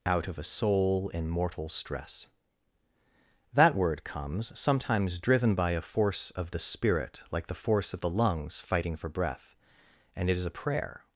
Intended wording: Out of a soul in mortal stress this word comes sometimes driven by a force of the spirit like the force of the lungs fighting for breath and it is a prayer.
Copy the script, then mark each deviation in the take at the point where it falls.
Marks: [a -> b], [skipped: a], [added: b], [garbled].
Out of a soul in mortal stress [this -> that] word comes sometimes driven by a force of the spirit like the force of the lungs fighting for breath and it is a prayer.